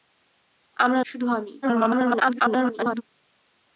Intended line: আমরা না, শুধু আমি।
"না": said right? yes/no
no